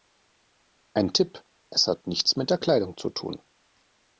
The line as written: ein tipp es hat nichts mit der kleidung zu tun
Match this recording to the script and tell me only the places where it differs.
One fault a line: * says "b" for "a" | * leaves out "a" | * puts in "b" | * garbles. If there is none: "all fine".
all fine